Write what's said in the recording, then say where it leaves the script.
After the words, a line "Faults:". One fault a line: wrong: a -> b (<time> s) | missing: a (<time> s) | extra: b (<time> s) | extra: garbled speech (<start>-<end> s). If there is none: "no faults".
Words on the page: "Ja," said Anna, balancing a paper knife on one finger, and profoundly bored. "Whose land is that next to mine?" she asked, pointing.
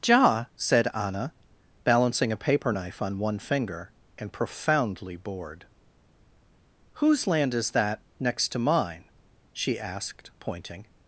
"Ja," said Anna, balancing a paper knife on one finger, and profoundly bored. "Whose land is that next to mine?" she asked, pointing.
Faults:
no faults